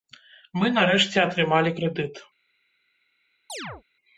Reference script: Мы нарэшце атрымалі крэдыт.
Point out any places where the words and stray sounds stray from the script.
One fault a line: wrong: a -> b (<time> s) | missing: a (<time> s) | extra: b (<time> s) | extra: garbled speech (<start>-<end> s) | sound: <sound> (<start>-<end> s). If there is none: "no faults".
sound: chirp (3.5-3.8 s)